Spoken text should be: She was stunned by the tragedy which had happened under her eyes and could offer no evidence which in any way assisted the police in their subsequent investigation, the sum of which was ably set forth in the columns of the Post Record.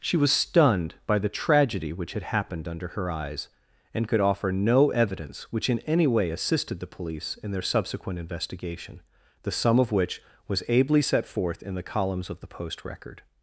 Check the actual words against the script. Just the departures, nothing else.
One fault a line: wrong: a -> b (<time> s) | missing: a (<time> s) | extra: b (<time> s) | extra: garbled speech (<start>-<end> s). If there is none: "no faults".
no faults